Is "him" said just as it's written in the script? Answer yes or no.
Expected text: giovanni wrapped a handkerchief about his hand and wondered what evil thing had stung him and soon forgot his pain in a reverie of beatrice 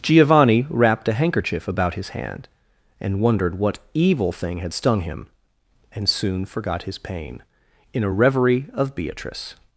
yes